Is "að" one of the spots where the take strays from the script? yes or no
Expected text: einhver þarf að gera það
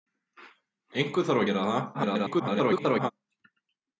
yes